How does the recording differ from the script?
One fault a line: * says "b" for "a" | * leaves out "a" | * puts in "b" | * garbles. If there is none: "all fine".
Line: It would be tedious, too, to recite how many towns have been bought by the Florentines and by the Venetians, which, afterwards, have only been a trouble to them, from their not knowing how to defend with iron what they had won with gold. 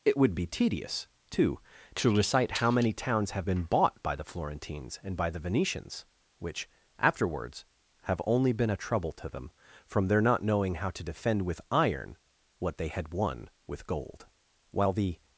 * puts in "While the"